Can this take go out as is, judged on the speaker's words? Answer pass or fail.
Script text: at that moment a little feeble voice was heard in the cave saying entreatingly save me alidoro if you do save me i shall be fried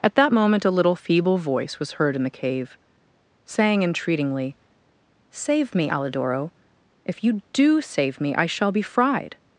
pass